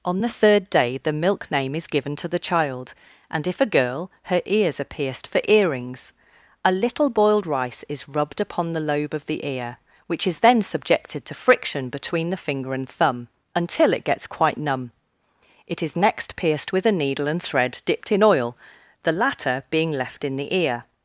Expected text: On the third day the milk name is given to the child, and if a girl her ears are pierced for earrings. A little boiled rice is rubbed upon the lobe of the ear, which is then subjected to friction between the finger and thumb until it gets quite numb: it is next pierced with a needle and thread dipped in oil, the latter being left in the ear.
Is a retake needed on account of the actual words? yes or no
no